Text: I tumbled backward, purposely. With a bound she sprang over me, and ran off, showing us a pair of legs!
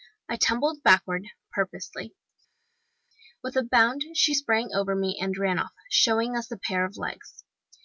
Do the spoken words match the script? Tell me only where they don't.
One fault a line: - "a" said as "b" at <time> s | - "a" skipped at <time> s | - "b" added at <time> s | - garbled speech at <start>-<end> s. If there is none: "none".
none